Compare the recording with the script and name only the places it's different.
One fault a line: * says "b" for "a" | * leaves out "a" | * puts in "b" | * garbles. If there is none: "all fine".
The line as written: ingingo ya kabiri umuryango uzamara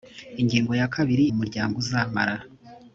all fine